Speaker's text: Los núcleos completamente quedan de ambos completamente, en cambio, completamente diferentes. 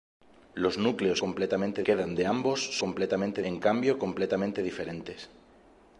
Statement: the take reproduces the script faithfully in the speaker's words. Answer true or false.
true